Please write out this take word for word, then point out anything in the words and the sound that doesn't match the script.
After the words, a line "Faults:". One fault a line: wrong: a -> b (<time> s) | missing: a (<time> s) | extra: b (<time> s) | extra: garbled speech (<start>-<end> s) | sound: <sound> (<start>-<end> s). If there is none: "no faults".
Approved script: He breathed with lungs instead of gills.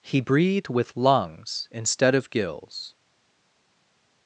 He breathed with lungs instead of gills.
Faults:
no faults